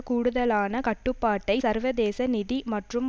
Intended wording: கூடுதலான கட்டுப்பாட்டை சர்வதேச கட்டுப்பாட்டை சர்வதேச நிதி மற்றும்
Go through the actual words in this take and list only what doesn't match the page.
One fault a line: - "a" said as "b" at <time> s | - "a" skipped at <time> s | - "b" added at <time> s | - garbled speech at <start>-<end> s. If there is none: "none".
- "கட்டுப்பாட்டை சர்வதேச" skipped at 2.3 s